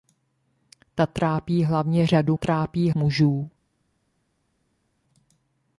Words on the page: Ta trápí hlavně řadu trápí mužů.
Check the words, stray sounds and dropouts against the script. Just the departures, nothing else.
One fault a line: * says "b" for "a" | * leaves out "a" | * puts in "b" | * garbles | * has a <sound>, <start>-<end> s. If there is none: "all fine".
all fine